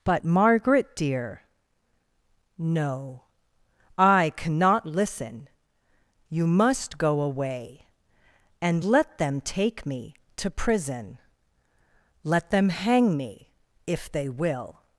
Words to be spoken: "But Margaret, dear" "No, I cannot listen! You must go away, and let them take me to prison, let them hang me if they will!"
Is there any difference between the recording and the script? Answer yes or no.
no